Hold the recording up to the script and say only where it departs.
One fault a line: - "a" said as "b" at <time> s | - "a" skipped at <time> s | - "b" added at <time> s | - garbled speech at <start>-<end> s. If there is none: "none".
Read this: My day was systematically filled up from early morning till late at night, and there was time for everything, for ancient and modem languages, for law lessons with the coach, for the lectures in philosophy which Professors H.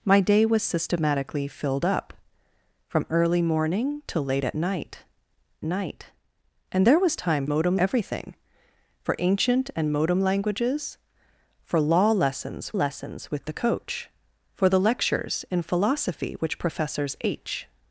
- "night" added at 5.6 s
- "for" said as "modem" at 7.5 s
- "lessons" added at 12.7 s